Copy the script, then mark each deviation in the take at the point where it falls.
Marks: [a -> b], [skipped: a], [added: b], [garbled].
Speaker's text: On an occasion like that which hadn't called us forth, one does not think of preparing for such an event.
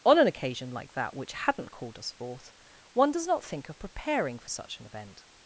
On an occasion like that which hadn't called us forth, one does not think of preparing for such an event.